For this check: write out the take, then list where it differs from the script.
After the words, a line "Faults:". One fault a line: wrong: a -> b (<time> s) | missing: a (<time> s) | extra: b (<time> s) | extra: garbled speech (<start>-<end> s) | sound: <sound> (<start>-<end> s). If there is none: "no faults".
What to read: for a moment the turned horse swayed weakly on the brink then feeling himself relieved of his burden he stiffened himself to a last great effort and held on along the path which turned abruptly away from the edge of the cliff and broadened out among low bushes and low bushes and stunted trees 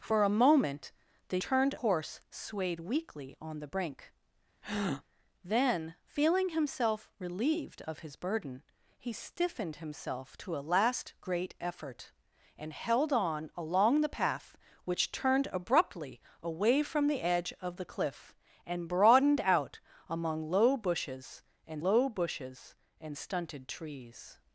for a moment the turned horse swayed weakly on the brink then feeling himself relieved of his burden he stiffened himself to a last great effort and held on along the path which turned abruptly away from the edge of the cliff and broadened out among low bushes and low bushes and stunted trees
Faults:
sound: breath (4.6-5.0 s)